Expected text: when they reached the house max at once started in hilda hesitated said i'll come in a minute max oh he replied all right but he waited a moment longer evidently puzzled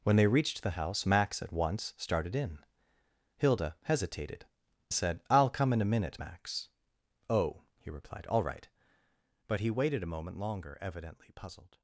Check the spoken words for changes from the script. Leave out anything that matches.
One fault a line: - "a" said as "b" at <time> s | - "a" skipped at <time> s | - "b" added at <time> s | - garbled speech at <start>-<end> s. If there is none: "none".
none